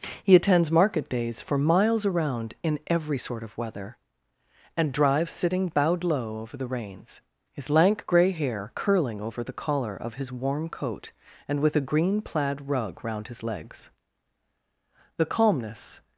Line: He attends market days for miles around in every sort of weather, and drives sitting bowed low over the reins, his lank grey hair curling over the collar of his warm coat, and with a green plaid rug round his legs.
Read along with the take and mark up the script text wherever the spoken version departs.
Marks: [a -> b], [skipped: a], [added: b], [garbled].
He attends market days for miles around in every sort of weather, and drives sitting bowed low over the reins, his lank grey hair curling over the collar of his warm coat, and with a green plaid rug round his legs. [added: The calmness]